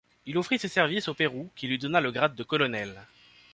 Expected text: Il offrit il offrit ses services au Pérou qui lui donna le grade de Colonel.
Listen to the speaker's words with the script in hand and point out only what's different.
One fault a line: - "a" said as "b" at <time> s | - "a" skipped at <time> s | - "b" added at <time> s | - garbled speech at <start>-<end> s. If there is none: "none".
- "il offrit" skipped at 0.6 s